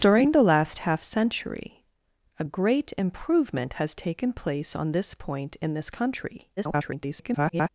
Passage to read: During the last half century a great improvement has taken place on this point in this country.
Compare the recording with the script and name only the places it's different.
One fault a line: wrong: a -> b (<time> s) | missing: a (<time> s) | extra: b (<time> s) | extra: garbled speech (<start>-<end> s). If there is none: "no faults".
extra: garbled speech (6.6-7.7 s)